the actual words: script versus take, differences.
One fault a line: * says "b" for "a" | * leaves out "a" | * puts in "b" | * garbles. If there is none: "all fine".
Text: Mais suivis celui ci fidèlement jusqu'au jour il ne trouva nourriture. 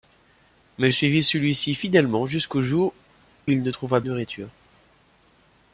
all fine